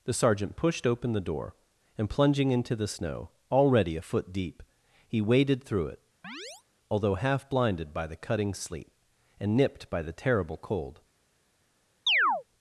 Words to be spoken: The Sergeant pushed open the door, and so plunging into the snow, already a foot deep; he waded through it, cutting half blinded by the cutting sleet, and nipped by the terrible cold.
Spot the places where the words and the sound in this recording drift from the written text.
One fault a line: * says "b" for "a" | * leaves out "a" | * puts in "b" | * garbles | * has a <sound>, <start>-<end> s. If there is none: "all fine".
* leaves out "so"
* has a chirp, 6.2-6.6 s
* says "although" for "cutting"
* has a chirp, 12.1-12.4 s